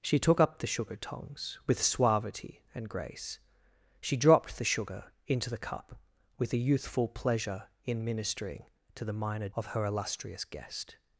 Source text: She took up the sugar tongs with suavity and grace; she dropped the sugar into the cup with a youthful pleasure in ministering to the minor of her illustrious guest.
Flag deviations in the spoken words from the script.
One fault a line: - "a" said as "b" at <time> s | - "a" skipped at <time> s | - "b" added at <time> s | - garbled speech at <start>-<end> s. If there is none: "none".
none